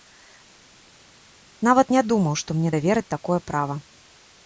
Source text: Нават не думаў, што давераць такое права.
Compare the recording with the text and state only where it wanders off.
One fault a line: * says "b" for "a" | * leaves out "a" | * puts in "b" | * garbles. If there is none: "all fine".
* puts in "мне"